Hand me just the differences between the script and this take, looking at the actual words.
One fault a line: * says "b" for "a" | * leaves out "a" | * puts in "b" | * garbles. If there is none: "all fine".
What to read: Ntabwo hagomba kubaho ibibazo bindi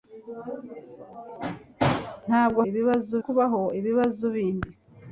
* says "ibibazo" for "hagomba"